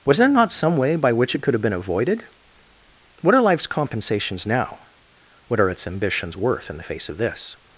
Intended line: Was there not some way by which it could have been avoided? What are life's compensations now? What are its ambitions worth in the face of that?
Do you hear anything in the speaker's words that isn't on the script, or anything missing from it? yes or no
yes